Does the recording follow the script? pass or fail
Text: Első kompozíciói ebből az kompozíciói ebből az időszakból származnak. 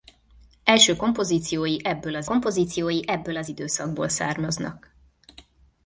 pass